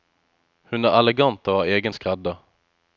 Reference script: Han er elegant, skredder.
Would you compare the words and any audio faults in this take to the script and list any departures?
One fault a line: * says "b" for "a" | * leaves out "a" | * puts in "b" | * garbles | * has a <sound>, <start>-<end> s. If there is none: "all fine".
* says "Hun" for "Han"
* puts in "og har egen"